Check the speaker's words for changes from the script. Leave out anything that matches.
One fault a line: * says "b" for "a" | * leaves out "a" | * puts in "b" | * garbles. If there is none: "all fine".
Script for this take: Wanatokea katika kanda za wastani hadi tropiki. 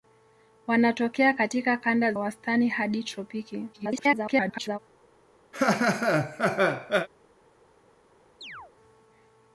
* leaves out "za"
* garbles